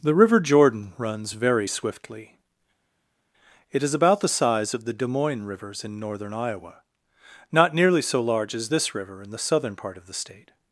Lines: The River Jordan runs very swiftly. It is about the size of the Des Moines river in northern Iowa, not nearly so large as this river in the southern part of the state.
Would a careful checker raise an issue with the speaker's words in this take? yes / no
yes